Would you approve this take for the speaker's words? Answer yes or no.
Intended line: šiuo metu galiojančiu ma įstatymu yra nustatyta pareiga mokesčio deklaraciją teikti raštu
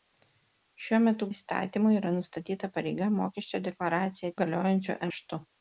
no